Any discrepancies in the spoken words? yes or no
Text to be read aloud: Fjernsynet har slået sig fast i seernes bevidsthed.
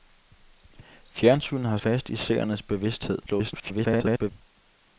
yes